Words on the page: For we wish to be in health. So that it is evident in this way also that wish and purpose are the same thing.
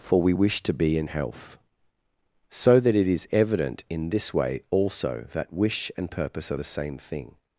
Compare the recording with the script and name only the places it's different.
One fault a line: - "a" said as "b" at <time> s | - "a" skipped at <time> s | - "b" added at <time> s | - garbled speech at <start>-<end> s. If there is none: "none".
none